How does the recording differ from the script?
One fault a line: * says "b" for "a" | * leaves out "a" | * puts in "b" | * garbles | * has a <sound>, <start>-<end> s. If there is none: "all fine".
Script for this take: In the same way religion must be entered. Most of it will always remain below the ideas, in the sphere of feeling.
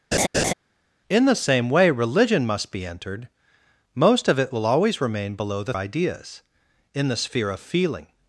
* has a laugh, 0.1-0.5 s